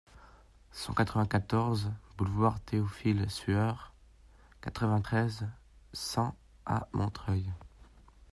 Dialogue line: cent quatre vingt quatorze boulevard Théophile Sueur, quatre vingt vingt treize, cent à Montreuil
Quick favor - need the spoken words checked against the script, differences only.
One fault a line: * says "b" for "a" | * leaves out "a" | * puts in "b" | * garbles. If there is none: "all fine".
* leaves out "vingt"